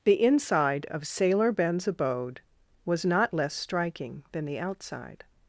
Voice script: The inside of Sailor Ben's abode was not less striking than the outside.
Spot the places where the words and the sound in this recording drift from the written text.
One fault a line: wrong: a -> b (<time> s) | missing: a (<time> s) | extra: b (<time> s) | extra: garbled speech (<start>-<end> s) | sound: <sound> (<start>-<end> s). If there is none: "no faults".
no faults